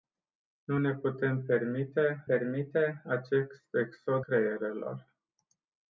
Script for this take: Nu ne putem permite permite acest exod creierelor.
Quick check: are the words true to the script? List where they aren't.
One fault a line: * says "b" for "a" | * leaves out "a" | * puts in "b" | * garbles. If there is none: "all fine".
all fine